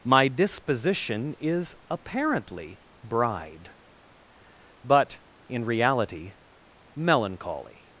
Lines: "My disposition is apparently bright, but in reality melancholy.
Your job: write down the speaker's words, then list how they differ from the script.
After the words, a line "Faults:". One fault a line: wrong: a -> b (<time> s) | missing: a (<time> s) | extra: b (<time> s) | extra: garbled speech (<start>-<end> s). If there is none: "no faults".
"My disposition is apparently bride, but in reality melancholy.
Faults:
wrong: bright -> bride (3.0 s)